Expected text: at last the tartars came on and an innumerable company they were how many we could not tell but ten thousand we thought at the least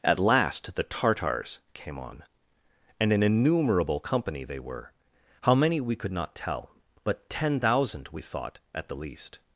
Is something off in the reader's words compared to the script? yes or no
no